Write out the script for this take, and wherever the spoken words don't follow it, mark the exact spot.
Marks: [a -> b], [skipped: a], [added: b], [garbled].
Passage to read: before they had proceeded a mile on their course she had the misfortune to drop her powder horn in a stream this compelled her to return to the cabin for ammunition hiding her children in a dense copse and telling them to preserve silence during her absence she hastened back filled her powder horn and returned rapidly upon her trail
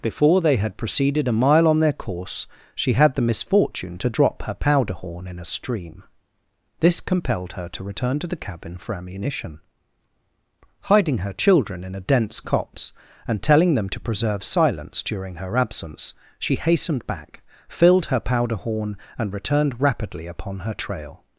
before they had proceeded a mile on their course she had the misfortune to drop her powder horn in a stream this compelled her to return to the cabin for ammunition hiding her children in a dense copse and telling them to preserve silence during her absence she hastened back filled her powder horn and returned rapidly upon her trail